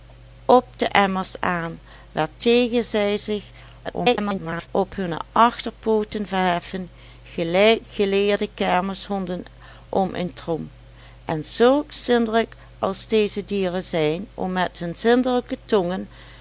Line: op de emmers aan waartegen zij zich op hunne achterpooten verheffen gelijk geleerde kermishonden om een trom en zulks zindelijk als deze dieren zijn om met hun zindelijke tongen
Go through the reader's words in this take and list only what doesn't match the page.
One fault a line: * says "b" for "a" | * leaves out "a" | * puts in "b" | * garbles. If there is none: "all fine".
* garbles